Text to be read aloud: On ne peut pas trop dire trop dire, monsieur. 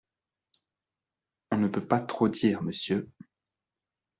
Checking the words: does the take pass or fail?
fail